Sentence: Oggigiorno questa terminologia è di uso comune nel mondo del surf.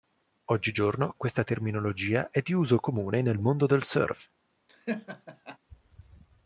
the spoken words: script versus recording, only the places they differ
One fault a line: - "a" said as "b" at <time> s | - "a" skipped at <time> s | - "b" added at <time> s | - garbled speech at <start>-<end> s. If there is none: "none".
none